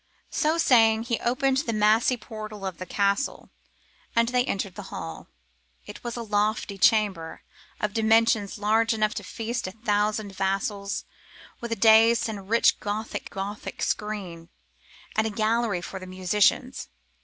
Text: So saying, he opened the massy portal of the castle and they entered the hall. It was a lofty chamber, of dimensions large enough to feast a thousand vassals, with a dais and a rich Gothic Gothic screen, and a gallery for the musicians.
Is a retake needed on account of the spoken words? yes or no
no